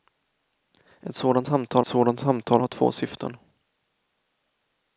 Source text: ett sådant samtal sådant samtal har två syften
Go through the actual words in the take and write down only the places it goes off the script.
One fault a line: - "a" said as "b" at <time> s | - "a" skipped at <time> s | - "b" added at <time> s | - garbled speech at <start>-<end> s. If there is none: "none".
none